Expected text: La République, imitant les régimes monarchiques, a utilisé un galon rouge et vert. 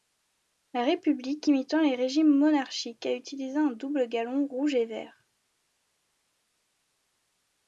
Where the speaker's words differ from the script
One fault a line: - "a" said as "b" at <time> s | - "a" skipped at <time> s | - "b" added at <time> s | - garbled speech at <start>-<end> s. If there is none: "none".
- "double" added at 3.7 s